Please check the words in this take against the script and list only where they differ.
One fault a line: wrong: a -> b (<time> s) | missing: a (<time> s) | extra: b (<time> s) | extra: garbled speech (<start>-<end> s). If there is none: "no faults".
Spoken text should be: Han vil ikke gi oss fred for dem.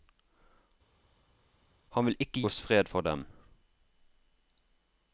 missing: gi (2.4 s)